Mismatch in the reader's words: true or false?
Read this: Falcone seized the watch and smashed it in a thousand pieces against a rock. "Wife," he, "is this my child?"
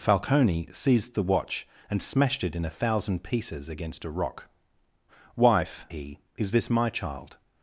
false